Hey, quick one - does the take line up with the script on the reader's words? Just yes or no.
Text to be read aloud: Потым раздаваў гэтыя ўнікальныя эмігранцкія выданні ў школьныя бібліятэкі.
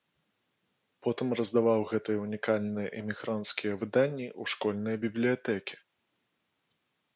yes